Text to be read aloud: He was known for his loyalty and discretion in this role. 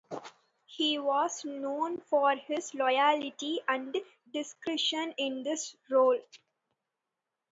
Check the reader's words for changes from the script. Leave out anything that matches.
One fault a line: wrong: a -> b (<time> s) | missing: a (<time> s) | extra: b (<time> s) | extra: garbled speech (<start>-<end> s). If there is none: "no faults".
no faults